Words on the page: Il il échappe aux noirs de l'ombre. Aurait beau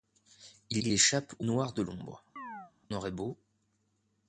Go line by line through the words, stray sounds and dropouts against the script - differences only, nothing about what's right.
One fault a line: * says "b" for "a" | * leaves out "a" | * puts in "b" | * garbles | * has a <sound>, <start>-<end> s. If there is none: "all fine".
* has a chirp, 2.4-2.7 s